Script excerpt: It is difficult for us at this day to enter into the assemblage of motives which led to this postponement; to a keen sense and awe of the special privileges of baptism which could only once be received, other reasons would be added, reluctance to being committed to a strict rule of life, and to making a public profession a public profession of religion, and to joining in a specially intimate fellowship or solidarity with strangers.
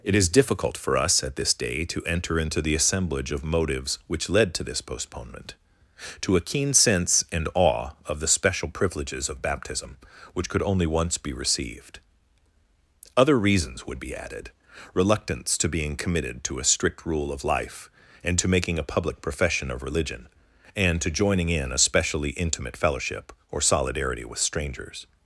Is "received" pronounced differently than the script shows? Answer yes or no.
no